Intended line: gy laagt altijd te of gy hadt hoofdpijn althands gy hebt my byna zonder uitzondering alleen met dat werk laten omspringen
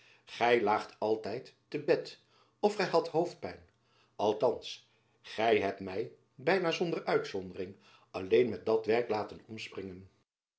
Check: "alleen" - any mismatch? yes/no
no